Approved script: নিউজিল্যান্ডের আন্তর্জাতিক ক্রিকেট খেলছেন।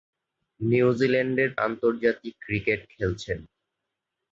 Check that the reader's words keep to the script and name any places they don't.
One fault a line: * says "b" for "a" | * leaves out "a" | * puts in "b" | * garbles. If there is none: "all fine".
all fine